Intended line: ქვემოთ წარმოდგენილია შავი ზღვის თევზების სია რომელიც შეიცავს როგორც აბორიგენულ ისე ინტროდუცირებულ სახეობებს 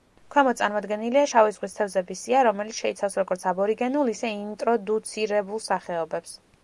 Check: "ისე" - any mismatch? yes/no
no